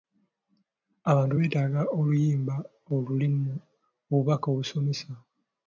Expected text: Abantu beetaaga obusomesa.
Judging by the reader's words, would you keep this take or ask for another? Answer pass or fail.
fail